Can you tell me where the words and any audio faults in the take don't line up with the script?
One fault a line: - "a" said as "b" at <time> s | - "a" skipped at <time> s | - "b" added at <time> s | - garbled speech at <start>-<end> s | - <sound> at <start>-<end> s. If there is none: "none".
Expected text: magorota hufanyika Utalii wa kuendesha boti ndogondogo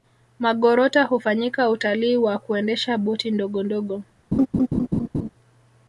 - laugh at 4.3-5.3 s